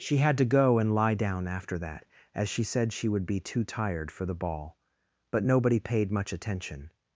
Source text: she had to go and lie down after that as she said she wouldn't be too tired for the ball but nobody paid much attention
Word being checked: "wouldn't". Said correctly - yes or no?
no